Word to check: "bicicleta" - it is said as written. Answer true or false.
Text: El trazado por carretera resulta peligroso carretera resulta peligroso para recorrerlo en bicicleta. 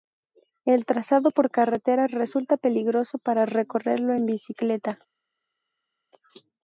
true